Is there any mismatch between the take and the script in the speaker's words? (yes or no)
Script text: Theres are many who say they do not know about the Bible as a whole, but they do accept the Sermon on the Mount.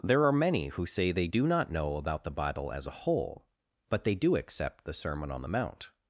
yes